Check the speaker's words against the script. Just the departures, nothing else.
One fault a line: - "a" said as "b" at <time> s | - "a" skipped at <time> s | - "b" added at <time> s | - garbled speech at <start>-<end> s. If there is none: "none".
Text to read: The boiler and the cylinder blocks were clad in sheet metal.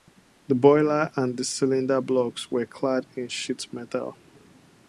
none